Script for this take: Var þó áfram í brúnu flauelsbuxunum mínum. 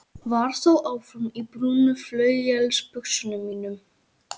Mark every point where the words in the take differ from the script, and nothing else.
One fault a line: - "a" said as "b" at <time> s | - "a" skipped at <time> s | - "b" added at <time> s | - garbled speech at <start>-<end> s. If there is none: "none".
none